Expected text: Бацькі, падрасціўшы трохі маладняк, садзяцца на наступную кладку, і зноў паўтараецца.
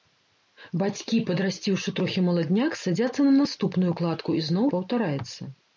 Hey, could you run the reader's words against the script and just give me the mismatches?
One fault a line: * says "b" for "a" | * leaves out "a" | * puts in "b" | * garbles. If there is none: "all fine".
all fine